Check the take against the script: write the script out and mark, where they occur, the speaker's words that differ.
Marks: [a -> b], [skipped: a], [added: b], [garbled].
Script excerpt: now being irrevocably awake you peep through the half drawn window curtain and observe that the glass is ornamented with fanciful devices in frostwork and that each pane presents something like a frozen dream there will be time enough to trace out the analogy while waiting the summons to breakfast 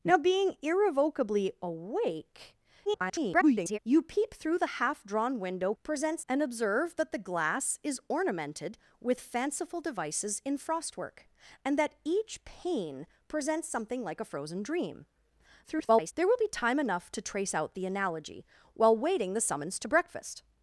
now being irrevocably awake [garbled] you peep through the half drawn window [curtain -> presents] and observe that the glass is ornamented with fanciful devices in frostwork and that each pane presents something like a frozen dream [garbled] there will be time enough to trace out the analogy while waiting the summons to breakfast